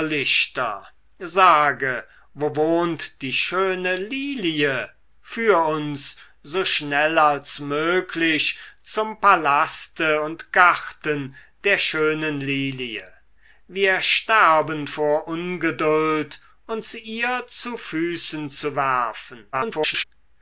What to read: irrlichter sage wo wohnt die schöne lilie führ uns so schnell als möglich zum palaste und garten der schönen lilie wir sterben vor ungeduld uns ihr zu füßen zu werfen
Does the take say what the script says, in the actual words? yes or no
no